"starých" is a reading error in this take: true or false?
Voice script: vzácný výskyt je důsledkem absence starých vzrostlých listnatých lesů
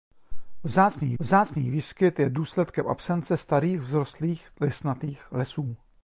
false